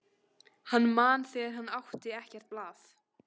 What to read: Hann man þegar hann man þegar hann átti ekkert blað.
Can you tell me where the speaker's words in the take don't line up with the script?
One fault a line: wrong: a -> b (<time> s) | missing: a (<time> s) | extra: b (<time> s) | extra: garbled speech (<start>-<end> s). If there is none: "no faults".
missing: man þegar hann (1.7 s)